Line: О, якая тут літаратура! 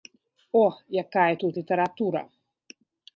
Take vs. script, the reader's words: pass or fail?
pass